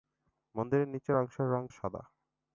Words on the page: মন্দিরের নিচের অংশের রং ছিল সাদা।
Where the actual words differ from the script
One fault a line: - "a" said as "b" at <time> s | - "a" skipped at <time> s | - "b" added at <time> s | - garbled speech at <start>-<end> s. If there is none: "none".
- "ছিল" skipped at 1.6 s